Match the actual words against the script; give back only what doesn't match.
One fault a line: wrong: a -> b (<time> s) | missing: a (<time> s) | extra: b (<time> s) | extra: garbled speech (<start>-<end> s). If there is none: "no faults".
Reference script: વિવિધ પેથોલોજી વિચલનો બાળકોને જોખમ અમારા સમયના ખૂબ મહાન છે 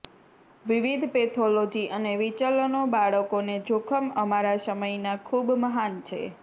extra: અને (1.9 s)